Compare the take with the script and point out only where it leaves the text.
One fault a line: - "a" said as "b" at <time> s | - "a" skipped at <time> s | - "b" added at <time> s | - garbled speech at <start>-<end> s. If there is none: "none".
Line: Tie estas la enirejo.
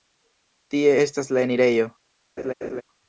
none